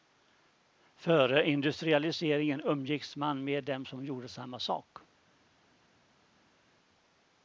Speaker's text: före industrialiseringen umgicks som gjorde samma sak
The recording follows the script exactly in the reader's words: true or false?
false